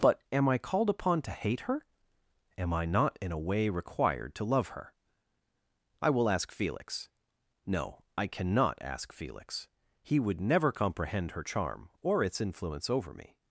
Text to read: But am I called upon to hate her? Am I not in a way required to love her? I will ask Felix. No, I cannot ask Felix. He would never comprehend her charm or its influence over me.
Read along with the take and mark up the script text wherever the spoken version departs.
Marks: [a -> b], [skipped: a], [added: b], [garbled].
But am I called upon to hate her? Am I not in a way required to love her? I will ask Felix. No, I cannot ask Felix. He would never comprehend her charm or its influence over me.